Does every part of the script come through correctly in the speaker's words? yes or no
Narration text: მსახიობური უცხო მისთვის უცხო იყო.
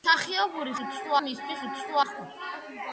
yes